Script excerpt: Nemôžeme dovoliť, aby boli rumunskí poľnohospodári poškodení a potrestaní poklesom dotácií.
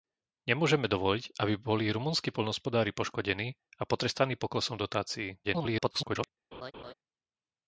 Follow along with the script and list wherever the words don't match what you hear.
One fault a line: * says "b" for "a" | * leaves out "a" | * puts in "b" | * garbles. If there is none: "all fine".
* garbles